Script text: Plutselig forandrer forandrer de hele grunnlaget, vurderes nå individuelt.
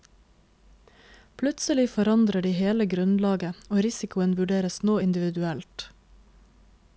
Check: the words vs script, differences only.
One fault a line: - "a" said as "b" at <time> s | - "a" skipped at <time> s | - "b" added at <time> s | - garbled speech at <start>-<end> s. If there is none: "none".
- "forandrer" skipped at 2.5 s
- "og risikoen" added at 3.7 s